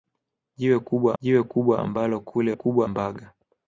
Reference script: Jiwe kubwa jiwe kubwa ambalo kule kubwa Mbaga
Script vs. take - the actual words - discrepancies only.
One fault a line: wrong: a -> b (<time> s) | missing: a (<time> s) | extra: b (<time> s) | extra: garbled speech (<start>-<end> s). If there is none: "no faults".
no faults